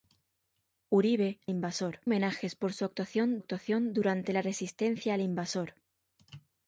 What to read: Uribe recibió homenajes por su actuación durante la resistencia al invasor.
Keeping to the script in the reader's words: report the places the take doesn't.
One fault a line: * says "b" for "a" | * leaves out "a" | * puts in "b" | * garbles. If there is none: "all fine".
* says "invasor" for "recibió"
* puts in "actuación"